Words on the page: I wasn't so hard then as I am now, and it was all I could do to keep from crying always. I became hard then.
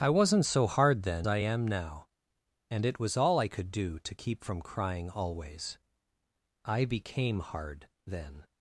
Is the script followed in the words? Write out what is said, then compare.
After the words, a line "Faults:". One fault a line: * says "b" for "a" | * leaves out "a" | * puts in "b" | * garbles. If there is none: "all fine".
I wasn't so hard then I am now, and it was all I could do to keep from crying always. I became hard then.
Faults:
* leaves out "as"